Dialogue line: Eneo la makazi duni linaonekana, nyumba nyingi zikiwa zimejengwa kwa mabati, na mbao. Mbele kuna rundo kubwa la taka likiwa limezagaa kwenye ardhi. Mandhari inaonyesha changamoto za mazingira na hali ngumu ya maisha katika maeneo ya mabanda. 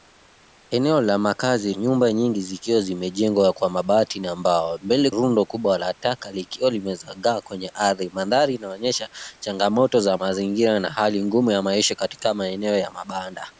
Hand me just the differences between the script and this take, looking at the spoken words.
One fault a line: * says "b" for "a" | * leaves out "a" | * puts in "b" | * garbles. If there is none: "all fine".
* leaves out "duni linaonekana"
* leaves out "kuna"